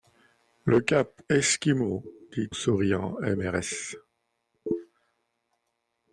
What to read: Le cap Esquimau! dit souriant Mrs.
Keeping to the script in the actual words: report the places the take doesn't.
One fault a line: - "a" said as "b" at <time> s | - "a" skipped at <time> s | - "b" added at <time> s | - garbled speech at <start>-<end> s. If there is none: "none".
none